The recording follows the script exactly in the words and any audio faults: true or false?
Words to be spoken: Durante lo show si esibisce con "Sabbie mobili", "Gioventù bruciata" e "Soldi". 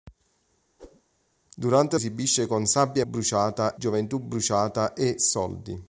false